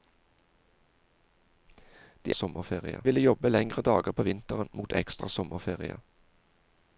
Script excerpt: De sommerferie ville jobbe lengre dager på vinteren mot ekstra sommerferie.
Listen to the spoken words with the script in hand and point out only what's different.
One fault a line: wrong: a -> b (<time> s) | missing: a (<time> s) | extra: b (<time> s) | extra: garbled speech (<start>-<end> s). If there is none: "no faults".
no faults